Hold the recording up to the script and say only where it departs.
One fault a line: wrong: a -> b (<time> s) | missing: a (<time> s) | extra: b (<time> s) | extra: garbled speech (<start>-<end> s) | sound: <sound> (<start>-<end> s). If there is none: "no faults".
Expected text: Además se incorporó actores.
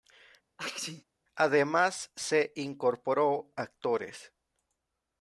sound: sneeze (0.6-1.0 s)